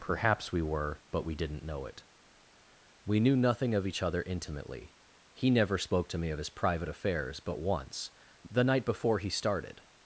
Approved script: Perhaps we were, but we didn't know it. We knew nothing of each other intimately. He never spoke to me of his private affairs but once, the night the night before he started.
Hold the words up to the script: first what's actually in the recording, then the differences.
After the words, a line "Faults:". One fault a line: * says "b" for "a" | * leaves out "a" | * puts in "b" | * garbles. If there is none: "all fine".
Perhaps we were, but we didn't know it. We knew nothing of each other intimately. He never spoke to me of his private affairs but once, the night before he started.
Faults:
* leaves out "the night"